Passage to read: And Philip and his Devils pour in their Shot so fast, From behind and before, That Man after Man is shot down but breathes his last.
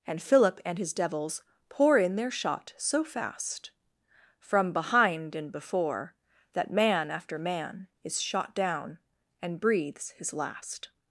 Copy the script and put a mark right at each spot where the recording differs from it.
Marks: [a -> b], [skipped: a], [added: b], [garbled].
And Philip and his Devils pour in their Shot so fast, From behind and before, That Man after Man is shot down [but -> and] breathes his last.